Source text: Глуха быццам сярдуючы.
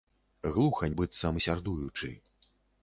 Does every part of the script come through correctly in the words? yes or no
yes